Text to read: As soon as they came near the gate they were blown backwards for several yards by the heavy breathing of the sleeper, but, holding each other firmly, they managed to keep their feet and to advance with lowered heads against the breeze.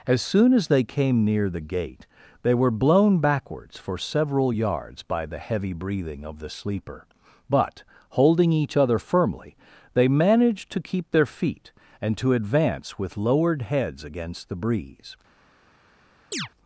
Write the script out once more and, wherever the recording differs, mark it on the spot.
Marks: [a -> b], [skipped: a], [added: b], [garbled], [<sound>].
As soon as they came near the gate they were blown backwards for several yards by the heavy breathing of the sleeper, but, holding each other firmly, they managed to keep their feet and to advance with lowered heads against the breeze. [chirp]